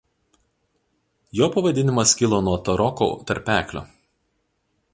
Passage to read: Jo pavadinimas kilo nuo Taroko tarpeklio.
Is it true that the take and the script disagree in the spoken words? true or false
false